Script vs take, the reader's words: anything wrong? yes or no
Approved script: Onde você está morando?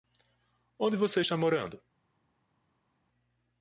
no